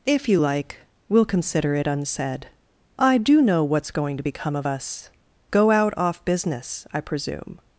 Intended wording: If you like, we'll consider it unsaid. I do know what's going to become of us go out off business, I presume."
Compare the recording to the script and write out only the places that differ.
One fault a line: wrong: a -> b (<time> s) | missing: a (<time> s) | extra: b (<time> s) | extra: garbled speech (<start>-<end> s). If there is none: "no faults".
no faults